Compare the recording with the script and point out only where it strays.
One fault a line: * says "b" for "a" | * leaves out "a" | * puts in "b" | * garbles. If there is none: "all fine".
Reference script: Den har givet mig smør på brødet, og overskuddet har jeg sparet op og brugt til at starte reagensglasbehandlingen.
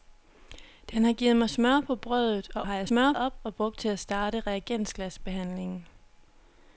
* leaves out "overskuddet"
* says "smør" for "sparet"